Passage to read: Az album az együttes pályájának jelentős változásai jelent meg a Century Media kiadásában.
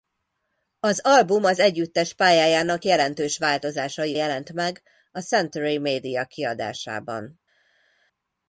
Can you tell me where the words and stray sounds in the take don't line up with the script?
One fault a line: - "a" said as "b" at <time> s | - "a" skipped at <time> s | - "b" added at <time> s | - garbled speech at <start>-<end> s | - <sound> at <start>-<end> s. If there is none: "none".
none